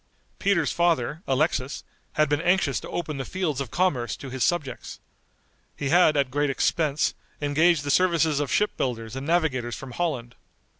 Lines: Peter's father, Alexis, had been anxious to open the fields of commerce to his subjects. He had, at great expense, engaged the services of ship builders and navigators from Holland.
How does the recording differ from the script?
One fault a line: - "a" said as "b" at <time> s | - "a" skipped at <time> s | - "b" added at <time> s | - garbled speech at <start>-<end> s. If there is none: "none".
none